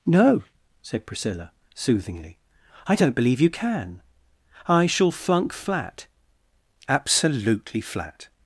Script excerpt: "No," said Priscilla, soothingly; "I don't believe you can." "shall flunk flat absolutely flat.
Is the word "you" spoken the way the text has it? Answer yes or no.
yes